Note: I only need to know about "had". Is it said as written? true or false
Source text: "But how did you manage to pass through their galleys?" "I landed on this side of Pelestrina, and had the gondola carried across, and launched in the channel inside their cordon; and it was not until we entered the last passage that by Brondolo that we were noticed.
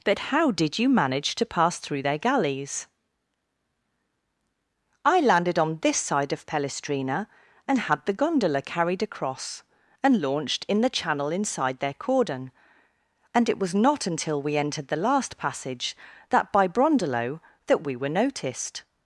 true